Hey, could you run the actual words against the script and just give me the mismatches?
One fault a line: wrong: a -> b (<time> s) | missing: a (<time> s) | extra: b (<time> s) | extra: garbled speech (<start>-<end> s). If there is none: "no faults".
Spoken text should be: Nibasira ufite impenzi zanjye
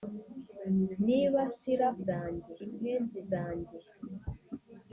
wrong: ufite -> zanjye (2.1 s)